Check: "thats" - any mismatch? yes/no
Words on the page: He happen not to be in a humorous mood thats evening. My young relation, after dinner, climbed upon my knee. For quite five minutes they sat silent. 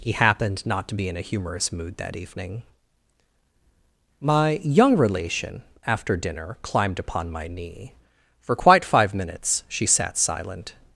yes